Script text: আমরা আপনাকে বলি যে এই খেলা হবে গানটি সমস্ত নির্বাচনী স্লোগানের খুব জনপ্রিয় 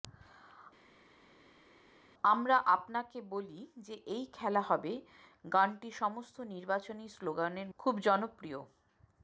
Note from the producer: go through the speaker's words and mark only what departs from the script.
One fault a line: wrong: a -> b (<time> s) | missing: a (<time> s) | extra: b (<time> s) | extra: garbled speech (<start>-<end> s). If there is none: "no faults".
no faults